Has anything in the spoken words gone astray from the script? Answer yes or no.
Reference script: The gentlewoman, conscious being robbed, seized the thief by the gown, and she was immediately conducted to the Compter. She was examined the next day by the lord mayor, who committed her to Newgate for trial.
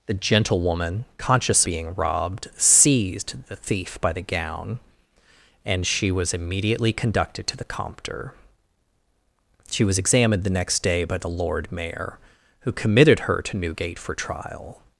no